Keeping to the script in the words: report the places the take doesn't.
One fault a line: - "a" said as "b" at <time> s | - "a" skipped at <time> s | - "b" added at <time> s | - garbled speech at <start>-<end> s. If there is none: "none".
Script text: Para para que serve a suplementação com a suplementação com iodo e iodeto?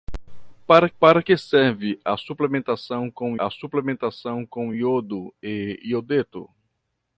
none